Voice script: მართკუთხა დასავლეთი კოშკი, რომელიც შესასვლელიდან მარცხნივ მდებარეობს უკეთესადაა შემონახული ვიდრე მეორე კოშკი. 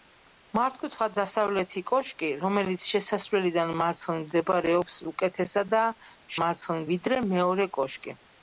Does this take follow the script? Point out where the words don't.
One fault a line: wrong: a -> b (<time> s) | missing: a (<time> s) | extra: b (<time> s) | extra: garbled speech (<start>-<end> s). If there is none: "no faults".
wrong: შემონახული -> მარცხნივ (6.4 s)